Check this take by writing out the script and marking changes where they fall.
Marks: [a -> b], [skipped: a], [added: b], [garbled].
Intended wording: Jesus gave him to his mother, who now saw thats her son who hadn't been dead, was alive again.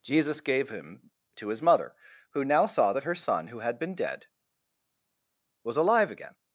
Jesus gave him to his mother, who now saw [thats -> that] her son who [hadn't -> had] been dead, was alive again.